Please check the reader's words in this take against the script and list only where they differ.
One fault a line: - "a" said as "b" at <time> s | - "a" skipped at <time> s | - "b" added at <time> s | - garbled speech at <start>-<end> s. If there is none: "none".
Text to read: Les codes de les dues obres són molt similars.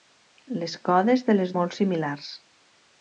- "dues obres són" skipped at 1.5 s